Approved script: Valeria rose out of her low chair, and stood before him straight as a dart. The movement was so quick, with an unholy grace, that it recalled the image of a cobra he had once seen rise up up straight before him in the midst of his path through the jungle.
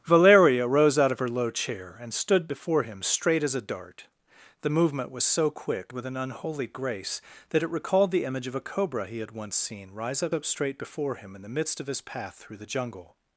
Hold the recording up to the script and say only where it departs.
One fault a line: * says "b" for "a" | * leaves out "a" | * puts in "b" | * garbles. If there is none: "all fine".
all fine